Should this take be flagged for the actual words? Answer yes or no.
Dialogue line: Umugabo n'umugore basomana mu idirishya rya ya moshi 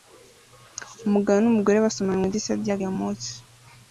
no